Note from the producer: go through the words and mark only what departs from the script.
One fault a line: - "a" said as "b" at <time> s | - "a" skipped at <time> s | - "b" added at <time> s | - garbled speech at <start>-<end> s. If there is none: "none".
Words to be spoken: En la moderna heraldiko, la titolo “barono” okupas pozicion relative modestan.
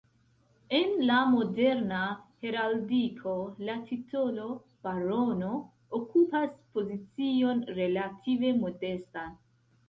none